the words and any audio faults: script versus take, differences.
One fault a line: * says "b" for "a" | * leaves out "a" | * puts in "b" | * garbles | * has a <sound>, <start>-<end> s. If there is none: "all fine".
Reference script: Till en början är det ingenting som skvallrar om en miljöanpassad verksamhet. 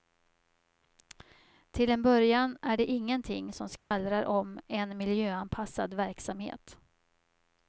* has a dropout, 3.8-3.9 s